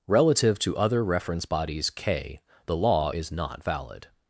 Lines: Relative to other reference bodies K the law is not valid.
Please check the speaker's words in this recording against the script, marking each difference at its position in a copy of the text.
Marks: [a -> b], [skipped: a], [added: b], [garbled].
Relative to other reference bodies K the law is not valid.